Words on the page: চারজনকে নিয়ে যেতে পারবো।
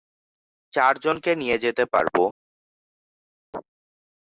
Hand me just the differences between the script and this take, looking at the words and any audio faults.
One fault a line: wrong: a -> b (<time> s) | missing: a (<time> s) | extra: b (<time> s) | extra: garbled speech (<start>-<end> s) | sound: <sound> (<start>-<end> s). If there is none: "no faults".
no faults